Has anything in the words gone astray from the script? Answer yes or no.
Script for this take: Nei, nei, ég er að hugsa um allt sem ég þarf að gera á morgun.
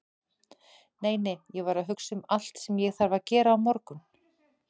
yes